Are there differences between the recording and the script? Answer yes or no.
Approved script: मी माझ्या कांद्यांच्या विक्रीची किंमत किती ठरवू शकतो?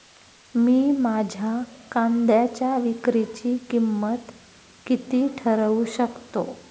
no